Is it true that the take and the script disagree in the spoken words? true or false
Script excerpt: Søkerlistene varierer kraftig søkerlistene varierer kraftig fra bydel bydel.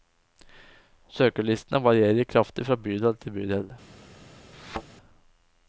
true